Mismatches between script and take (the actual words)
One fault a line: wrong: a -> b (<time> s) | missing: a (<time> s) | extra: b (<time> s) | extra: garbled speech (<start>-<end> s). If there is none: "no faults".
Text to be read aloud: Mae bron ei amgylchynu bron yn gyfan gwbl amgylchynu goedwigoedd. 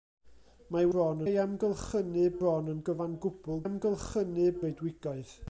no faults